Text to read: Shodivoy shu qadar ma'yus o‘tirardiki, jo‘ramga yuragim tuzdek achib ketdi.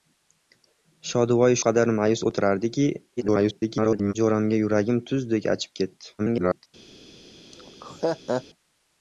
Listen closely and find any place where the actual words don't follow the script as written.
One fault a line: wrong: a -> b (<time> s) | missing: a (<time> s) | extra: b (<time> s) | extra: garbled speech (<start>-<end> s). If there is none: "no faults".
missing: shu (1.6 s)
extra: garbled speech (3.2-4.1 s)
extra: garbled speech (6.2-6.7 s)